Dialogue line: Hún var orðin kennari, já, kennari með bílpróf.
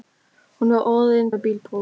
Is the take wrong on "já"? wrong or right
wrong